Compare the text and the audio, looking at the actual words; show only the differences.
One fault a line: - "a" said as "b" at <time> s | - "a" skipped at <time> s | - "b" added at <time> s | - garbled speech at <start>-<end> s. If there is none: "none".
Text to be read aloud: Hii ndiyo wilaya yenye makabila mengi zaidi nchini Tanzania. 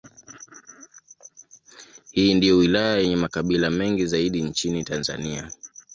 none